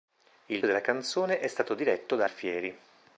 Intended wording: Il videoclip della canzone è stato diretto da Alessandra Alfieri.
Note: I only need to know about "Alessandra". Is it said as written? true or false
false